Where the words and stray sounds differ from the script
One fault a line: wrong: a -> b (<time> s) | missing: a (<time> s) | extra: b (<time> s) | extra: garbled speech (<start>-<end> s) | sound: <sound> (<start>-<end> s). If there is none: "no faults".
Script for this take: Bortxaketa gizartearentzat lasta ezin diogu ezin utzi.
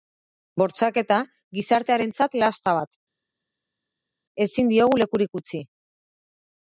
extra: bat (2.8 s)
wrong: ezin -> lekurik (5.0 s)